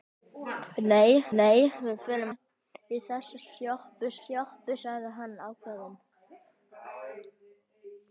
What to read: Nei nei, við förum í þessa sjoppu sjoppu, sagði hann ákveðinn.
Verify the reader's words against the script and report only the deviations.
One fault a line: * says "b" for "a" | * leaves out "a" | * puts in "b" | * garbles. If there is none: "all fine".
all fine